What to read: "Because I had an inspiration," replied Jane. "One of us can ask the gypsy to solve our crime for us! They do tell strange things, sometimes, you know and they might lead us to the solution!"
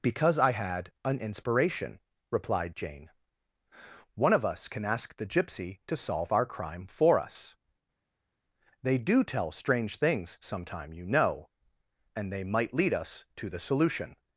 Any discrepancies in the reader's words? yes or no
yes